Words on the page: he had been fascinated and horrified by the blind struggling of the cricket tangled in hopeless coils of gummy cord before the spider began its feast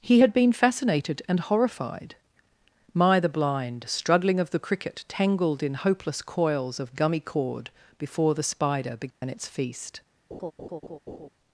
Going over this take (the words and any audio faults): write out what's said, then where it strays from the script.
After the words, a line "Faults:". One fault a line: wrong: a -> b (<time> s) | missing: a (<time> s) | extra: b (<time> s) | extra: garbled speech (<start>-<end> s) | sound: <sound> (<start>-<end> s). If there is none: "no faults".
he had been fascinated and horrified my the blind struggling of the cricket tangled in hopeless coils of gummy cord before the spider began its feast
Faults:
wrong: by -> my (2.9 s)
sound: dropout (9.1-9.2 s)
sound: laugh (10.3-11.3 s)